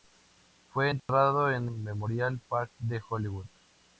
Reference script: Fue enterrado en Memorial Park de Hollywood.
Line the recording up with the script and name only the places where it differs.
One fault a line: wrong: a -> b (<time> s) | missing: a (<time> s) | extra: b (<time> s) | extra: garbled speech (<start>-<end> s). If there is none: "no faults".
no faults